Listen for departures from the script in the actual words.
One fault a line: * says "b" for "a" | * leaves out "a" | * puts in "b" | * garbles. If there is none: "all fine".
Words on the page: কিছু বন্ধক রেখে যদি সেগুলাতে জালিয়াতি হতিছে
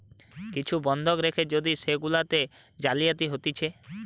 all fine